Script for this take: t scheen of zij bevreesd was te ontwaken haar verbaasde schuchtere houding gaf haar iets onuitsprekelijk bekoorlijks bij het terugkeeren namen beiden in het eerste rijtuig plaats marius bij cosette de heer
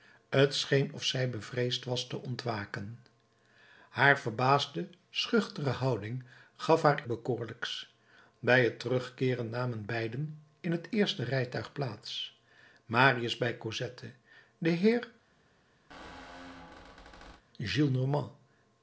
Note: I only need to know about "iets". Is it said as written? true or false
false